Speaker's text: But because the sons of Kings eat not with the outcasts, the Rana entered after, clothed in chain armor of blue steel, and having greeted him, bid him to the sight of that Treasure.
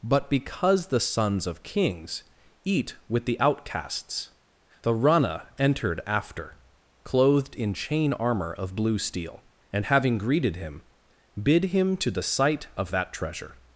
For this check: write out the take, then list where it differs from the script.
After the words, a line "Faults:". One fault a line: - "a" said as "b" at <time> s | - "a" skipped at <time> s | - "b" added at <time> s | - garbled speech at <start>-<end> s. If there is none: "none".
But because the sons of Kings eat with the outcasts, the Rana entered after, clothed in chain armor of blue steel, and having greeted him, bid him to the sight of that Treasure.
Faults:
- "not" skipped at 3.0 s